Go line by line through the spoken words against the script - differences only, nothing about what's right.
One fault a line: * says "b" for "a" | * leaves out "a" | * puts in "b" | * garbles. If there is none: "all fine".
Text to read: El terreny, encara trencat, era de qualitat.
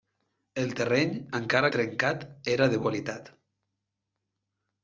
all fine